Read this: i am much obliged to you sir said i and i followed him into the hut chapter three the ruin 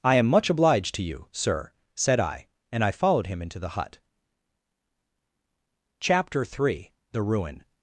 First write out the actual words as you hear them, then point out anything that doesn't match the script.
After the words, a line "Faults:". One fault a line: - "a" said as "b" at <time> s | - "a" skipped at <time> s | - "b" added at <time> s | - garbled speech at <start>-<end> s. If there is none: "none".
i am much obliged to you sir said i and i followed him into the hut chapter three the ruin
Faults:
none